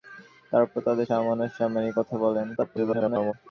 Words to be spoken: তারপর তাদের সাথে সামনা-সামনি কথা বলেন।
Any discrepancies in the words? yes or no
yes